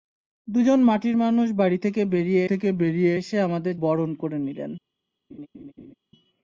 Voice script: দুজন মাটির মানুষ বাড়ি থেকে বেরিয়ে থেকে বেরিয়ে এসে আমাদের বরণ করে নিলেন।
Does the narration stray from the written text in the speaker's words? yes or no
no